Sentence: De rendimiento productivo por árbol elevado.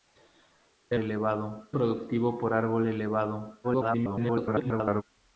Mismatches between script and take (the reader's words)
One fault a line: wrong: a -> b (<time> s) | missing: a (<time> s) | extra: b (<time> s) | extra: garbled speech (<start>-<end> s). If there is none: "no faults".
wrong: rendimiento -> elevado (1.0 s)
extra: garbled speech (3.6-5.0 s)